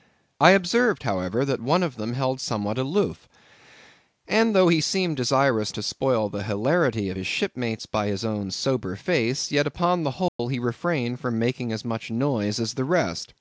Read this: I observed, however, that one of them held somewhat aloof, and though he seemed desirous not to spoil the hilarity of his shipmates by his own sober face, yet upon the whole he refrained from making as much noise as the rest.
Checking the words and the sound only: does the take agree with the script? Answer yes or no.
no